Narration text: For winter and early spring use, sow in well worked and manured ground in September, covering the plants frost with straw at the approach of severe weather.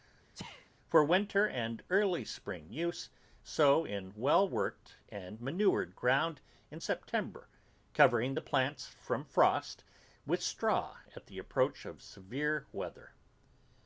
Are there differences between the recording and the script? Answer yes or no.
yes